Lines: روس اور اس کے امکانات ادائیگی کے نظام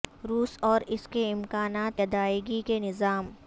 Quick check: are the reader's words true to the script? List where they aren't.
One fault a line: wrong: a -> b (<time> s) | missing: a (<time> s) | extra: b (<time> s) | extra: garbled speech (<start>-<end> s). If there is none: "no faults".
no faults